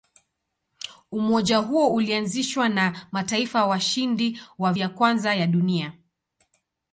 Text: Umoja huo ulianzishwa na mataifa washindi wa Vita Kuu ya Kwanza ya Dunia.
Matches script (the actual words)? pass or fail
fail